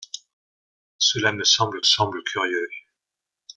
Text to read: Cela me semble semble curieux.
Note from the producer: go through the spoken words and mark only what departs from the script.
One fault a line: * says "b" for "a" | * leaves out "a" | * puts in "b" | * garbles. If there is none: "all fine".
all fine